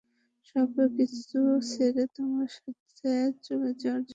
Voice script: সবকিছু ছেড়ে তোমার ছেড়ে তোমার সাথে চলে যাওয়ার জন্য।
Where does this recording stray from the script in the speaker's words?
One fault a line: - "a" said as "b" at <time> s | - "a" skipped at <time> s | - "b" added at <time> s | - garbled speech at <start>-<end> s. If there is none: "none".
- "ছেড়ে তোমার" skipped at 2.5 s